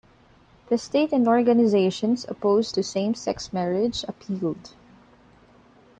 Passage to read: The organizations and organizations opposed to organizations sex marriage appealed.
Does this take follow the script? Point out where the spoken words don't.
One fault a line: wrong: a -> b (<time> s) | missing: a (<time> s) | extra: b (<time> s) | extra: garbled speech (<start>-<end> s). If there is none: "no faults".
wrong: organizations -> state (0.8 s)
wrong: organizations -> same (2.8 s)